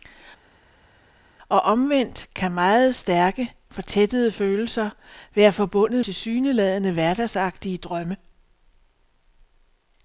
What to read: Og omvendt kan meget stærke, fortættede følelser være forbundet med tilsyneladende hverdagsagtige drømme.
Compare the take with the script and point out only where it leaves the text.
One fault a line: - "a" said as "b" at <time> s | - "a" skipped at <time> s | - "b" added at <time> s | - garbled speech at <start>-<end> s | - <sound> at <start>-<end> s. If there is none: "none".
- "med" skipped at 6.1 s